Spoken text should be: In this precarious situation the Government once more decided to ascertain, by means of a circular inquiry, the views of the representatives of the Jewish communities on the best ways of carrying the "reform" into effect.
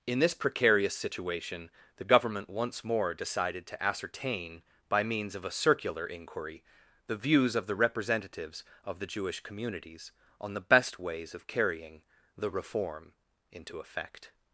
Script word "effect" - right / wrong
right